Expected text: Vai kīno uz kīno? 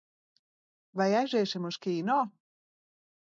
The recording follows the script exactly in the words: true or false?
false